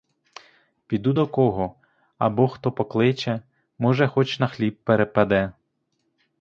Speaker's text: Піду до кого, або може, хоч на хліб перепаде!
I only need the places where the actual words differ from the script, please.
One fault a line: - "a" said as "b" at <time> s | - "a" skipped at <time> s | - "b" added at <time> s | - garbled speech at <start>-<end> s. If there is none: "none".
- "хто покличе" added at 2.5 s